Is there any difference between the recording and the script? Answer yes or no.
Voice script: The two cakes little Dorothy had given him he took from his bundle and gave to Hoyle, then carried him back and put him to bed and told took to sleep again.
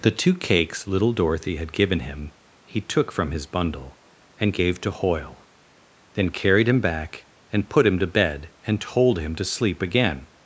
yes